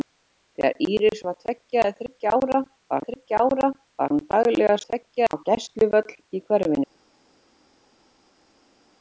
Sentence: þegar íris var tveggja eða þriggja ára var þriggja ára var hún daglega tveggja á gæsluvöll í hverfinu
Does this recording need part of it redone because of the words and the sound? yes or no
no